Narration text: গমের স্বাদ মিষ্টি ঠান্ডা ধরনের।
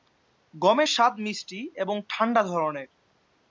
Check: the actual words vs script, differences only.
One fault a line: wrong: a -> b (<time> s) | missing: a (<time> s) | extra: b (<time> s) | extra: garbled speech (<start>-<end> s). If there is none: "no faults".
extra: এবং (1.7 s)